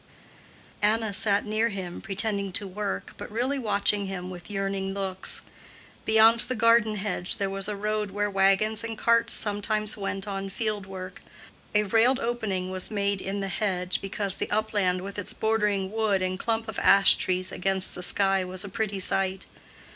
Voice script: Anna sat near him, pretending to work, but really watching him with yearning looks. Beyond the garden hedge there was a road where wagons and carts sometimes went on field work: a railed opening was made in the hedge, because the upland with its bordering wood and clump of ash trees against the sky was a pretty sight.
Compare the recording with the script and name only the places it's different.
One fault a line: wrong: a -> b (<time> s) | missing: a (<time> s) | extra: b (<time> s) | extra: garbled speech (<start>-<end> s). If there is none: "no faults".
no faults